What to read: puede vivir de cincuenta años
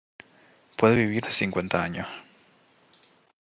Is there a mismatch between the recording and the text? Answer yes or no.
no